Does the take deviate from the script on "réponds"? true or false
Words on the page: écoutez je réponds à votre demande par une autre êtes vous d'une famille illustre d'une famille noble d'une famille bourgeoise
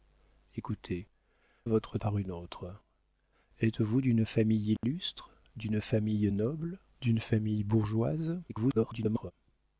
true